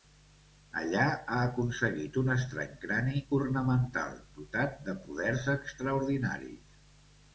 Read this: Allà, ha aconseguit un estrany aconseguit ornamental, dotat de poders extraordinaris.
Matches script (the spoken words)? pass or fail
fail